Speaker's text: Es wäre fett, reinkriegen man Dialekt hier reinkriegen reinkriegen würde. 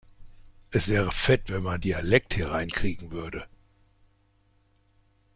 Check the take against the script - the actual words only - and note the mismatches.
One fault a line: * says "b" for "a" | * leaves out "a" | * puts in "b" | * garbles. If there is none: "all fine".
* says "wenn" for "reinkriegen"
* leaves out "reinkriegen"